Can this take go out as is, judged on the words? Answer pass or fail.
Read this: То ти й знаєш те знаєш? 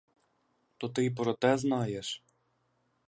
fail